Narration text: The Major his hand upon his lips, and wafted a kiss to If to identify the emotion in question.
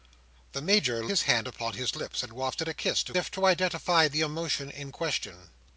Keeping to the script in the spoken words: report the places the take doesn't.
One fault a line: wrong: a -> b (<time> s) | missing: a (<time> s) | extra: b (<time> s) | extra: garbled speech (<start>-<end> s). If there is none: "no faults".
no faults